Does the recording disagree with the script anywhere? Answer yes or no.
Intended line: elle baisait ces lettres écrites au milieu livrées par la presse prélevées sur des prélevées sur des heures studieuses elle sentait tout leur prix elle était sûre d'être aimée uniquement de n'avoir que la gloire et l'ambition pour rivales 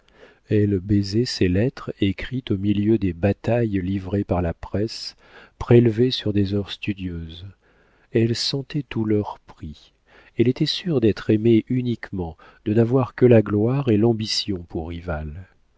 yes